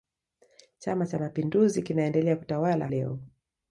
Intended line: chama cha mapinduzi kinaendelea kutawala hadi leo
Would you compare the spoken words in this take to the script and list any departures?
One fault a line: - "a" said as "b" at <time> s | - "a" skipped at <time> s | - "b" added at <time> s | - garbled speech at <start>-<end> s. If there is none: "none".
- "hadi" skipped at 2.9 s